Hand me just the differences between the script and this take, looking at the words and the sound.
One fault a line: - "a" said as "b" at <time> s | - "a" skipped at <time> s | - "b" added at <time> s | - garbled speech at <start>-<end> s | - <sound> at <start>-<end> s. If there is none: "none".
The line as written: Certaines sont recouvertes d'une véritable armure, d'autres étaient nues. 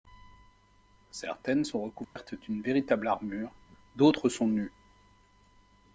- dropout at 2.0-2.2 s
- "étaient" said as "sont" at 4.3 s